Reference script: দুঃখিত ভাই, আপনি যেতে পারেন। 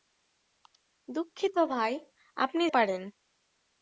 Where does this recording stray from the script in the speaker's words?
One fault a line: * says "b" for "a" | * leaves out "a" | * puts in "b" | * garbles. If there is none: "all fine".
* leaves out "যেতে"